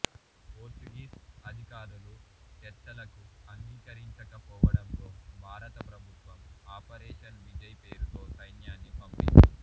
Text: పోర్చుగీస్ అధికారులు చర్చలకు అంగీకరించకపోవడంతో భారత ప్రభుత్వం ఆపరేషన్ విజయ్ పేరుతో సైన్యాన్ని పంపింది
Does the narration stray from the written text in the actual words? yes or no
no